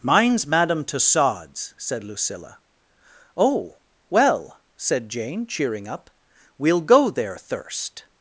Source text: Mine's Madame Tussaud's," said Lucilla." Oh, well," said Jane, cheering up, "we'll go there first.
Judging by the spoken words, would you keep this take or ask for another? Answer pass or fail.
fail